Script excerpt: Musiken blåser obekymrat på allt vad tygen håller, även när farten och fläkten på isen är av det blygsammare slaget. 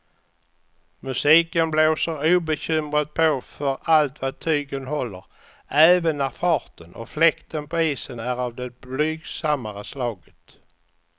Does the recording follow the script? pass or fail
fail